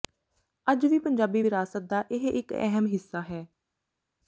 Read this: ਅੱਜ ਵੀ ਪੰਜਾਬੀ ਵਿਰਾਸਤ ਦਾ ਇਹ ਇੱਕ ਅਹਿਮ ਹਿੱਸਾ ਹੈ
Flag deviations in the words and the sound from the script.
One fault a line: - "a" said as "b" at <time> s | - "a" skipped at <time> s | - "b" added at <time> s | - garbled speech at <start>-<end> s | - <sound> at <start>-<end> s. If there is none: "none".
none